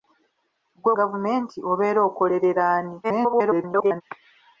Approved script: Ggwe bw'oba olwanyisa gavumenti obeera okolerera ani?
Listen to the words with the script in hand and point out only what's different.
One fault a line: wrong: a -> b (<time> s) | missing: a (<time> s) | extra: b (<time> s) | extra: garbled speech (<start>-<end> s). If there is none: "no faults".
missing: bw'oba olwanyisa (0.9 s)
extra: garbled speech (3.0-4.0 s)